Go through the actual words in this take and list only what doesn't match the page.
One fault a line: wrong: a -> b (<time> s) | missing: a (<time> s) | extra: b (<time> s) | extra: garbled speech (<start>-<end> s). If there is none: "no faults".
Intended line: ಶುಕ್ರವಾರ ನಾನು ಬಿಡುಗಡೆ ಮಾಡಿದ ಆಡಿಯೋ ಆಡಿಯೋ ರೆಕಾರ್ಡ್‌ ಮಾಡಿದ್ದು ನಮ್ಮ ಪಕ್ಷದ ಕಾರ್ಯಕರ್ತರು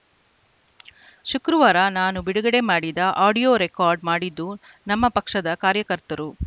missing: ಆಡಿಯೋ (3.5 s)